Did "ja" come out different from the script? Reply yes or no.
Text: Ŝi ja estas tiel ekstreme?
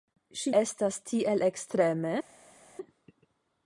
yes